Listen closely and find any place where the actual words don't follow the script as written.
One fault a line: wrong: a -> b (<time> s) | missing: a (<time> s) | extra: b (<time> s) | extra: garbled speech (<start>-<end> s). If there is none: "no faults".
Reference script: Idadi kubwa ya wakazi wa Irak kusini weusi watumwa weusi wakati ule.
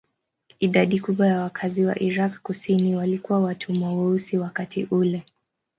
wrong: weusi -> walikuwa (3.0 s)